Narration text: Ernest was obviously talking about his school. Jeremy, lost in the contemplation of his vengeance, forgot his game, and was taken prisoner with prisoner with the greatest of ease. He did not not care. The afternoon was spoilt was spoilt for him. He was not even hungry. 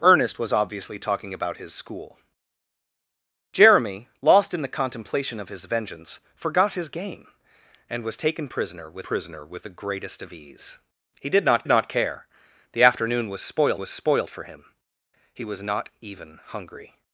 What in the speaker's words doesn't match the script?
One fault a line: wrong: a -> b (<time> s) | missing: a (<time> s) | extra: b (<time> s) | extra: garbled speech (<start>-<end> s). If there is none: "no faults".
no faults